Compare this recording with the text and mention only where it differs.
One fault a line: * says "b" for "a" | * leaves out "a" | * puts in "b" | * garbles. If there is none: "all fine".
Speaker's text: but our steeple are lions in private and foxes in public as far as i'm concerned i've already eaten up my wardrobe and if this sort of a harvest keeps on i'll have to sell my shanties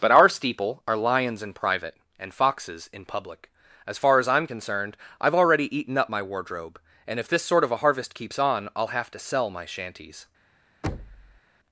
all fine